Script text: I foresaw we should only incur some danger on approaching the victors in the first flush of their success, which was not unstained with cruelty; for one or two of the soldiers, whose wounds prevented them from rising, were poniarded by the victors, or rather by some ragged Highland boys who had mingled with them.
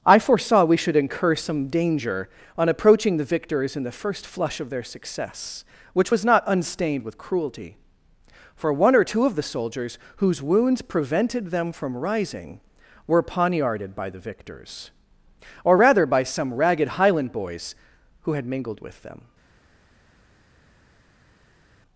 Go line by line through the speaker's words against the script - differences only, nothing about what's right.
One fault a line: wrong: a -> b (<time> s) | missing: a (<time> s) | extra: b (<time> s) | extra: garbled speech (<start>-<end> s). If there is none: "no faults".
missing: only (0.9 s)